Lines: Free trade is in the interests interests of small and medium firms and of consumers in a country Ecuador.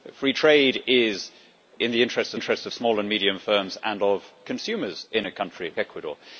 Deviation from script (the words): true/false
false